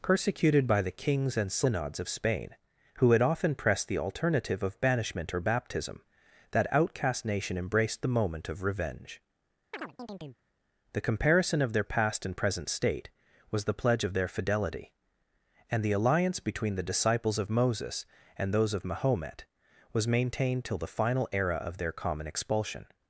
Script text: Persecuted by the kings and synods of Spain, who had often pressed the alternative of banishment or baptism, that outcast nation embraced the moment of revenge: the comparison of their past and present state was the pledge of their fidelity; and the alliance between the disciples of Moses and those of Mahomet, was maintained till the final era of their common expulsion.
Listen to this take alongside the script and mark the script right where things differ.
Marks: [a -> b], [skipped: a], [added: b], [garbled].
Persecuted by the kings and synods of Spain, who had often pressed the alternative of banishment or baptism, that outcast nation embraced the moment of revenge: the comparison of their past and present state was the pledge of their fidelity; and the alliance between the disciples of Moses and those of Mahomet, was maintained till the final era of their common expulsion.